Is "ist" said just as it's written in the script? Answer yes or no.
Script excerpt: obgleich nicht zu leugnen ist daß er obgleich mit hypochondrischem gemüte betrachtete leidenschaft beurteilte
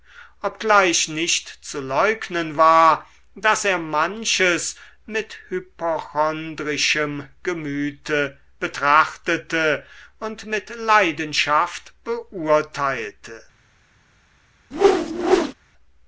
no